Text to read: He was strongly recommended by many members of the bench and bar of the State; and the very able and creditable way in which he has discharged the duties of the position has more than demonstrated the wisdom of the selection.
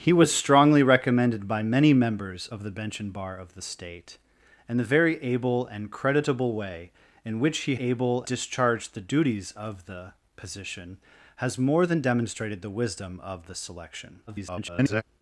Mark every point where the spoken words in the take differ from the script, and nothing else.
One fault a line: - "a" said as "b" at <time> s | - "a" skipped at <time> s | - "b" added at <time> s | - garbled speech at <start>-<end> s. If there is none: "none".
- "has" said as "able" at 7.8 s
- garbled speech at 14.3-15.0 s